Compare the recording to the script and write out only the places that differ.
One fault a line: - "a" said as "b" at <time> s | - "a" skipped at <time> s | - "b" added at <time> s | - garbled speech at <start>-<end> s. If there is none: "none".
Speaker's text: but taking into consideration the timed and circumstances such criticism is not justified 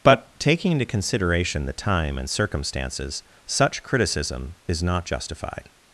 - "timed" said as "time" at 1.7 s